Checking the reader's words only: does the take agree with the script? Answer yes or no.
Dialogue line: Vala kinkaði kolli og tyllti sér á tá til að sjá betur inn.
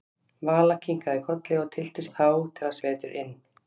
no